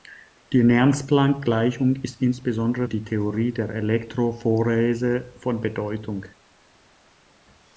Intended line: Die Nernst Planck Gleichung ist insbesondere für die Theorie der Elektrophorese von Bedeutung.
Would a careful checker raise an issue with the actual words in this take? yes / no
yes